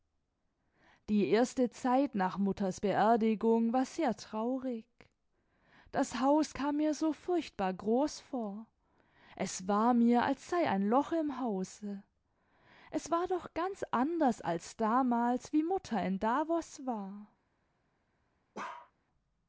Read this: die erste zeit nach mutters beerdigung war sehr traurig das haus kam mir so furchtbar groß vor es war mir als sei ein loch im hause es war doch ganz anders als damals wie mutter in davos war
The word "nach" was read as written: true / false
true